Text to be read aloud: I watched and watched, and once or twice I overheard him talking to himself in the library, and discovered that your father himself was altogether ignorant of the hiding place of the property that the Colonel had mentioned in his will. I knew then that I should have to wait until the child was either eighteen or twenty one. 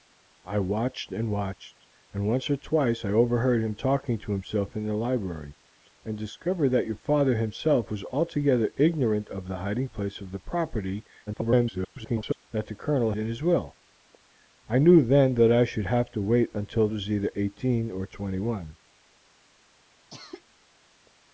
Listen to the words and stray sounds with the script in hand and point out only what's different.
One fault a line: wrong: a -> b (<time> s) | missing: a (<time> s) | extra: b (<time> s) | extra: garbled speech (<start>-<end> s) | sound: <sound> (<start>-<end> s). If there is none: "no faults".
extra: garbled speech (11.3-12.5 s)
missing: had mentioned (13.1 s)
missing: the child (16.9 s)
sound: cough (20.1-20.4 s)